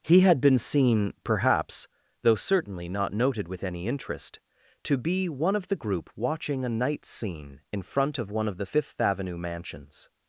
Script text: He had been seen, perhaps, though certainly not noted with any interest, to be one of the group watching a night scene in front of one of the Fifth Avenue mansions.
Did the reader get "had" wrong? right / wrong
right